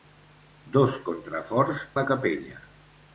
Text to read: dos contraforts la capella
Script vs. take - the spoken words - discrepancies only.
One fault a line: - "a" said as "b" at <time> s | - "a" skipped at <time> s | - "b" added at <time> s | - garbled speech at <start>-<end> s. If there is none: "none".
none